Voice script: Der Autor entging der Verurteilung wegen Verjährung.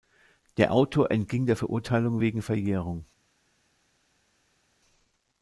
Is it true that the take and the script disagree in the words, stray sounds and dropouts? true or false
false